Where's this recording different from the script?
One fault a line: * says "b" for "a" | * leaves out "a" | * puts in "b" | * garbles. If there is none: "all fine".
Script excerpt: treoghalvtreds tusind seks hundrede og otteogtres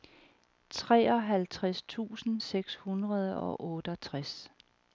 all fine